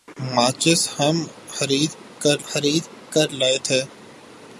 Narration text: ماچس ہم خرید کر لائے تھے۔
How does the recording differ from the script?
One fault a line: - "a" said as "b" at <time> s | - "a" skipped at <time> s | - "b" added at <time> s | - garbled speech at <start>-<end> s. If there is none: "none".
- "خرید کر" added at 2.5 s